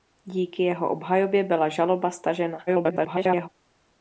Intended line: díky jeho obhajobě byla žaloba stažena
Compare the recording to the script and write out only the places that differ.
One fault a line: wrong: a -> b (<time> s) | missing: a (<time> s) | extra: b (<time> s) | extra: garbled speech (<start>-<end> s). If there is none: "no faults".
extra: garbled speech (2.7-3.5 s)